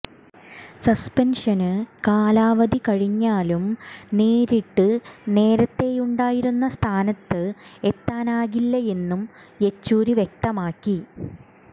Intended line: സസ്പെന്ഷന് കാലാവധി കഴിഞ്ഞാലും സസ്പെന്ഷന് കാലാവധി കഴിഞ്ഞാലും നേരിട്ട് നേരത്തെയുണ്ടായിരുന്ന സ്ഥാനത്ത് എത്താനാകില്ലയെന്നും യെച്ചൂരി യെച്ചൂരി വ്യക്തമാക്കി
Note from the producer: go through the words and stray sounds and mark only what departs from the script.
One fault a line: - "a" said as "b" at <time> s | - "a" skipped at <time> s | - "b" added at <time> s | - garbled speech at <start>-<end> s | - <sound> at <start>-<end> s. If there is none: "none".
- "സസ്പെന്ഷന് കാലാവധി കഴിഞ്ഞാലും" skipped at 3.6 s
- "യെച്ചൂരി" skipped at 10.2 s